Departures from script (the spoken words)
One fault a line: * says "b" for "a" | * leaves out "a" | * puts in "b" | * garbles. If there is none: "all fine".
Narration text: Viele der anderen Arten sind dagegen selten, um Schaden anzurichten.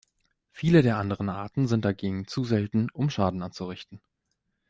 * puts in "zu"